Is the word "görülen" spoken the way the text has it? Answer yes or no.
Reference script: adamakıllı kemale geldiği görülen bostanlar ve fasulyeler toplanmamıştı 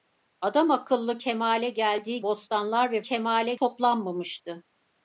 no